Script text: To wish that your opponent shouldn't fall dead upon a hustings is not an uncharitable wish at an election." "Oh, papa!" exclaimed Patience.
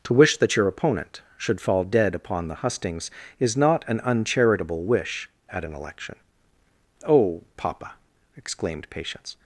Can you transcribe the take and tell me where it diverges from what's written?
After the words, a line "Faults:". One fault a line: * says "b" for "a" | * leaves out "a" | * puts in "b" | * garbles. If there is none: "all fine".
To wish that your opponent should fall dead upon the hustings is not an uncharitable wish at an election." "Oh, papa!" exclaimed Patience.
Faults:
* says "should" for "shouldn't"
* says "the" for "a"